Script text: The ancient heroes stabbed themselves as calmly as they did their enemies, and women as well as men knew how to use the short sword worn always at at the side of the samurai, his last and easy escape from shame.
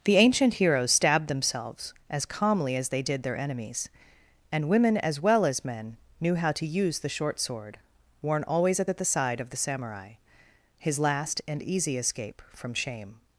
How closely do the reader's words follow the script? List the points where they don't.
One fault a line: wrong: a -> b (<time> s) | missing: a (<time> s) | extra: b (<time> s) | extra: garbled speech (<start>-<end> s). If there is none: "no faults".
no faults